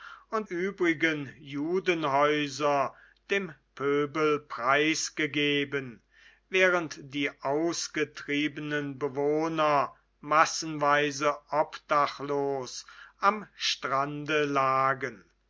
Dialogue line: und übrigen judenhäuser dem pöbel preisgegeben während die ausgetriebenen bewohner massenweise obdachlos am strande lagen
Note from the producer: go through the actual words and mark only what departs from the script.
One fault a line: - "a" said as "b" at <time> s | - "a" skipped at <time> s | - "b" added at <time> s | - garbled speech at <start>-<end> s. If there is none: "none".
none